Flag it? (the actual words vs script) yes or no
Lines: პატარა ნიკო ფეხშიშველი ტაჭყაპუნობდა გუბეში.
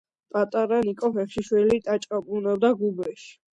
no